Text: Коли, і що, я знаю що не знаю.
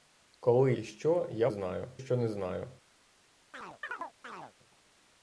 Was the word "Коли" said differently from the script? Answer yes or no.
no